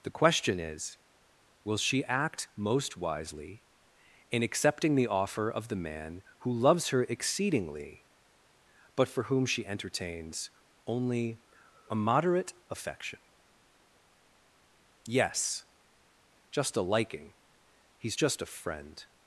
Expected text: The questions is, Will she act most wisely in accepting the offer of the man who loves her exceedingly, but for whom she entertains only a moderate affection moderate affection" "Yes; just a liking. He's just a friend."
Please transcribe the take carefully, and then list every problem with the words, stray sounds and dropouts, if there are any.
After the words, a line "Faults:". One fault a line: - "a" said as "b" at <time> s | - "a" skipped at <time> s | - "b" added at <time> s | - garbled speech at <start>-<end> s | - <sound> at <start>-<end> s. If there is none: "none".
The question is, Will she act most wisely in accepting the offer of the man who loves her exceedingly, but for whom she entertains only a moderate affection" "Yes; just a liking. He's just a friend."
Faults:
- "questions" said as "question" at 0.1 s
- "moderate affection" skipped at 13.2 s